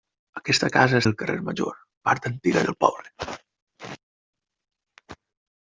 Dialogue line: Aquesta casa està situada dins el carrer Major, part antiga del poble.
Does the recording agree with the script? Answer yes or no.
no